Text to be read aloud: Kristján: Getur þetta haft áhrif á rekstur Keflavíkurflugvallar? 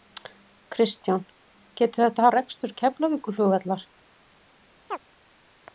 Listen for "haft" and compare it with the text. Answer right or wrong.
wrong